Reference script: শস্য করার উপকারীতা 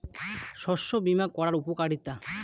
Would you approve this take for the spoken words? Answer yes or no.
no